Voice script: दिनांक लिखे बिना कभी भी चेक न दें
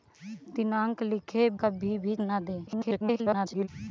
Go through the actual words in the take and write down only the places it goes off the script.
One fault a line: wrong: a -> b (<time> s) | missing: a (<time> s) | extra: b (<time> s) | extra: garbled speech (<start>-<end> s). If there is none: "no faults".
missing: बिना (1.5 s)
missing: चेक (2.1 s)
extra: garbled speech (2.7-3.7 s)